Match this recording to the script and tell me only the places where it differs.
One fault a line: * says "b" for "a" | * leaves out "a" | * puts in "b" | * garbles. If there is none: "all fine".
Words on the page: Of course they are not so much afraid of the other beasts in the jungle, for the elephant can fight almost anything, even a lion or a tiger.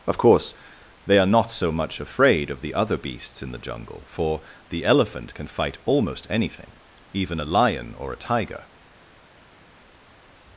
all fine